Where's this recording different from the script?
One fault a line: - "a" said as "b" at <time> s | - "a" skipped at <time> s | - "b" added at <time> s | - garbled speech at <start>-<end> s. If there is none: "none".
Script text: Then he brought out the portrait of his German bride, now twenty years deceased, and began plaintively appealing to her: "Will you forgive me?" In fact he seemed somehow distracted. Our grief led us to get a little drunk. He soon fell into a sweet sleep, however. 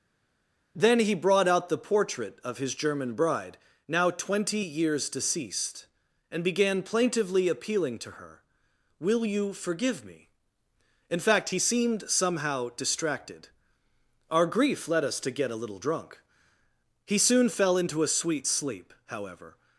none